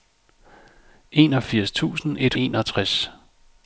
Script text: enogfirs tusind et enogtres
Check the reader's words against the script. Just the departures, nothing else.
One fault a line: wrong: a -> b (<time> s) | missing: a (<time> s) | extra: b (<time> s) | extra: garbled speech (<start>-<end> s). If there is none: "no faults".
no faults